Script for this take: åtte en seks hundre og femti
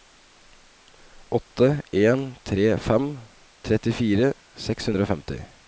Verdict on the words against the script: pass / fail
fail